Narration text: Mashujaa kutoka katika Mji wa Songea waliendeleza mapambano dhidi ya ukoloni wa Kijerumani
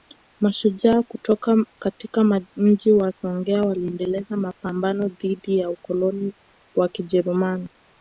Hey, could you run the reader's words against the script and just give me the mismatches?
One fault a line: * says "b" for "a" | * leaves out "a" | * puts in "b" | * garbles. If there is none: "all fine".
all fine